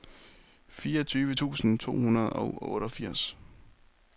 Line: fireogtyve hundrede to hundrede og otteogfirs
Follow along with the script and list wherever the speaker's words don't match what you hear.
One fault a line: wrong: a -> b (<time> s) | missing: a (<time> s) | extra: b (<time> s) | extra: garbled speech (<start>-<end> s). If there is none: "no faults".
wrong: hundrede -> tusind (1.3 s)